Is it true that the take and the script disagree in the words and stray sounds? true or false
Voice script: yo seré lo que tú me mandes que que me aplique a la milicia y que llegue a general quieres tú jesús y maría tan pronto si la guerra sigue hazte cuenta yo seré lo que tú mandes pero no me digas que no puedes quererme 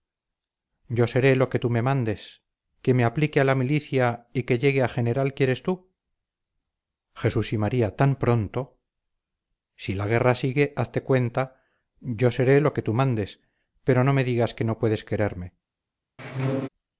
true